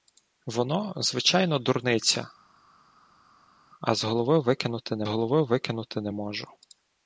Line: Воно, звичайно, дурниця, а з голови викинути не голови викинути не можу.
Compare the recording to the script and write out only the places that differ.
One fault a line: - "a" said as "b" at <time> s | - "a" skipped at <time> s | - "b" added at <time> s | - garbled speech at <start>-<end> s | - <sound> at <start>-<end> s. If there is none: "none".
none